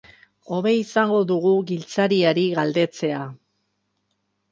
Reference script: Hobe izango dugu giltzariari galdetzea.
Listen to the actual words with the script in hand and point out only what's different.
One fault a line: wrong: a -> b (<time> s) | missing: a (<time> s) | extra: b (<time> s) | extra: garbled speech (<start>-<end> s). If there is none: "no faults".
no faults